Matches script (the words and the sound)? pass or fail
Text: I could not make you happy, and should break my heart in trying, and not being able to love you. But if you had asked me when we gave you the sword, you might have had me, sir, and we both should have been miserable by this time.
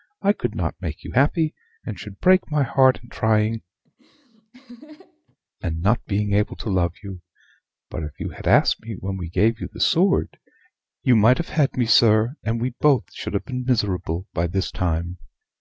fail